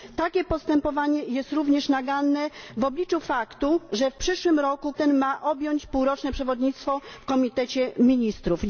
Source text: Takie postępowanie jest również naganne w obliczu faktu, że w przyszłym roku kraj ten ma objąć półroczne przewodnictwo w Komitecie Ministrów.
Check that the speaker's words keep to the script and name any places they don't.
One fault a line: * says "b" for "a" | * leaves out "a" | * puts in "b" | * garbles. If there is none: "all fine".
* leaves out "kraj"